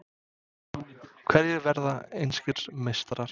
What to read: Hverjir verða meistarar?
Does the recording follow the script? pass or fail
fail